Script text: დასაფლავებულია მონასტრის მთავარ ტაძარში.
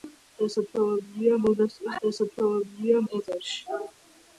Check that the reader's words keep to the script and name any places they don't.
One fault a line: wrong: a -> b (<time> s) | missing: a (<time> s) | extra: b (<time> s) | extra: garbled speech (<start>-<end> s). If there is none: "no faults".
wrong: მთავარ -> დასაფლავებულია (2.1 s)